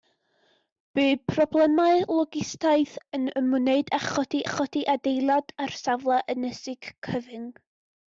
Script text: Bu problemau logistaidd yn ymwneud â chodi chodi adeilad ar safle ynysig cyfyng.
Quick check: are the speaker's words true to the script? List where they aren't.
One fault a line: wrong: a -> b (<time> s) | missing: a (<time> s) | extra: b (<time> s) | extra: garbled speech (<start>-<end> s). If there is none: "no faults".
no faults